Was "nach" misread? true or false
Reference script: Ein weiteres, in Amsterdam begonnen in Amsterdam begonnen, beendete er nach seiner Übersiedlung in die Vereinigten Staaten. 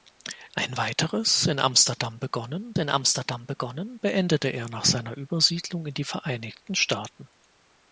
false